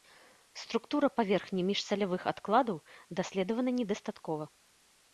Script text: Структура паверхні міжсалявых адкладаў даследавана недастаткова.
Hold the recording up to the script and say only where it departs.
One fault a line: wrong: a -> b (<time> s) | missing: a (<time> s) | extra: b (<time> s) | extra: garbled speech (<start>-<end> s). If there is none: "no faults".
no faults